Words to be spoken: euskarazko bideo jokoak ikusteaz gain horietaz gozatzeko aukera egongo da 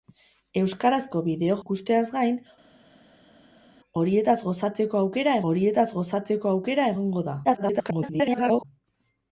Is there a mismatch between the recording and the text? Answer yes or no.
yes